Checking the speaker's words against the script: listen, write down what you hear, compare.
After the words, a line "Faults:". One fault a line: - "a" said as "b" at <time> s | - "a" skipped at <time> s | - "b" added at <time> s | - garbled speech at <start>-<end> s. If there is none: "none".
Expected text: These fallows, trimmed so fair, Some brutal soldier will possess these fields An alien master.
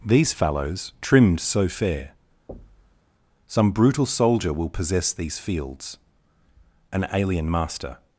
These fallows, trimmed so fair, Some brutal soldier will possess these fields An alien master.
Faults:
none